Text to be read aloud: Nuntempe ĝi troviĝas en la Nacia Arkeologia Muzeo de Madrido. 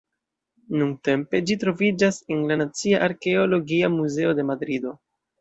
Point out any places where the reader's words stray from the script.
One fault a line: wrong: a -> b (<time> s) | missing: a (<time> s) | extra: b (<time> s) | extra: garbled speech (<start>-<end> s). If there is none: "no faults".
no faults